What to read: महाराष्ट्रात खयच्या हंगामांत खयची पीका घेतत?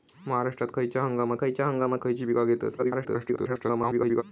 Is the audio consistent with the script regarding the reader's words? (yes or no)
no